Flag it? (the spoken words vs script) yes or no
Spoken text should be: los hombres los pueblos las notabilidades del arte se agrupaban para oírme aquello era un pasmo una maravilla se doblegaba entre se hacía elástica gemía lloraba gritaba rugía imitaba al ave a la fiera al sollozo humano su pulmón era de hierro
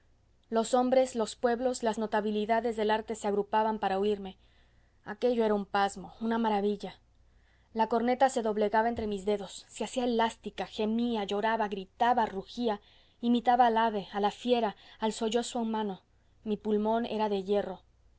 yes